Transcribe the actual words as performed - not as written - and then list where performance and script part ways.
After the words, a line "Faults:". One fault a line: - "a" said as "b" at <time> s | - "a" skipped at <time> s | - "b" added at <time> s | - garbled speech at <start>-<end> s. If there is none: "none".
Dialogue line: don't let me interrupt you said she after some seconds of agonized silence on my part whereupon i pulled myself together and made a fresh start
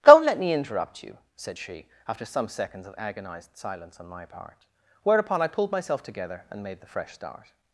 don't let me interrupt you said she after some seconds of agonized silence on my part whereupon i pulled myself together and made the fresh start
Faults:
- "a" said as "the" at 6.8 s